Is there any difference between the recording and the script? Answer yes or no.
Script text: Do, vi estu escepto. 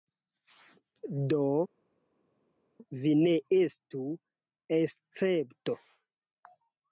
yes